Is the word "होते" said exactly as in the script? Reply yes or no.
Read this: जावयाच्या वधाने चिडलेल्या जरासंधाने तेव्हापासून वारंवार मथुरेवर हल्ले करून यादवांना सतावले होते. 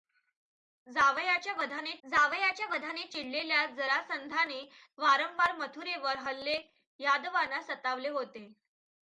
yes